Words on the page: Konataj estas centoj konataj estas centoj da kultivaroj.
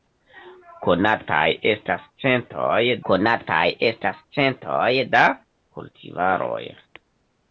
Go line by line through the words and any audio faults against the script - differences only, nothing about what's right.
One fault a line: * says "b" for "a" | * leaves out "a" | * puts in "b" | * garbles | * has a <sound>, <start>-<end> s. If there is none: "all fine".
all fine